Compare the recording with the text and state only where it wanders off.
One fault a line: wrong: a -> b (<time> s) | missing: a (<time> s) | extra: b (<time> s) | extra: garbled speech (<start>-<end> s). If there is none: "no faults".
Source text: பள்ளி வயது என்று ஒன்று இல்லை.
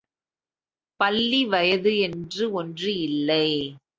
no faults